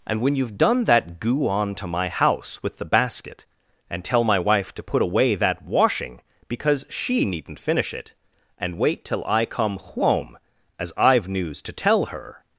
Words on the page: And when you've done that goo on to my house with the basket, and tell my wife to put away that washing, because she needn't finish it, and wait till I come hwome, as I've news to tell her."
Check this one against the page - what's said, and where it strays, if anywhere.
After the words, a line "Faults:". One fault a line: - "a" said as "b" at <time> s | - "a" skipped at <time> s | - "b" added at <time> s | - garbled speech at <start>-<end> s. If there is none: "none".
And when you've done that goo on to my house with the basket, and tell my wife to put away that washing, because she needn't finish it, and wait till I come hwome, as I've news to tell her."
Faults:
none